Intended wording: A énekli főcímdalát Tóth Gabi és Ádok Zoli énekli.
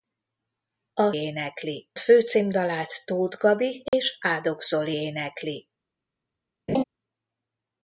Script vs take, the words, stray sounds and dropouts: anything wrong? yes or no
yes